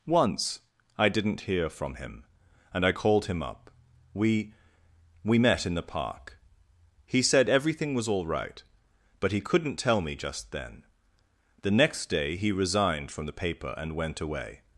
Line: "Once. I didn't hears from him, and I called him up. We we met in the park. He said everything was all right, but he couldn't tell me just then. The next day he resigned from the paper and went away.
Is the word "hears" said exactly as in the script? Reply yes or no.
no